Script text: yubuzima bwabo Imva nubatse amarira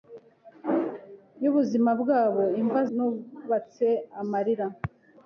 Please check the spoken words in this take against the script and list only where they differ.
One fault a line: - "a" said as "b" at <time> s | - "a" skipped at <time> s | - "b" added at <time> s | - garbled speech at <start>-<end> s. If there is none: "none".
none